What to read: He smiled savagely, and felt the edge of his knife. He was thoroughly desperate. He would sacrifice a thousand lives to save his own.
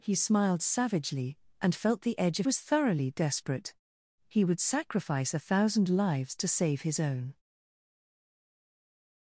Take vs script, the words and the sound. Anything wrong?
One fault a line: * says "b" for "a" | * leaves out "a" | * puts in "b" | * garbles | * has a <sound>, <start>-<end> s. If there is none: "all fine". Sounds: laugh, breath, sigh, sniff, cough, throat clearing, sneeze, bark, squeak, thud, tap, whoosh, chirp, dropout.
* leaves out "his knife He"